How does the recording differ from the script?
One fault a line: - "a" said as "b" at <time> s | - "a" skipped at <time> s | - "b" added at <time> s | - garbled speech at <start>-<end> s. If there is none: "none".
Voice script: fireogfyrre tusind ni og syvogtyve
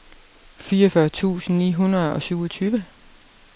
- "hundrede" added at 1.7 s